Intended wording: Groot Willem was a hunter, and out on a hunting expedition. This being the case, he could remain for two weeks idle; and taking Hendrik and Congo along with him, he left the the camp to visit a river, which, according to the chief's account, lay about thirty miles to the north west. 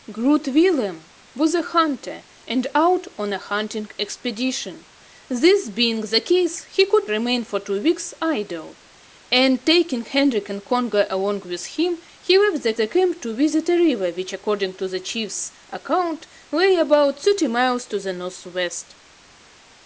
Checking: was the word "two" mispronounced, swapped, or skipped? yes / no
no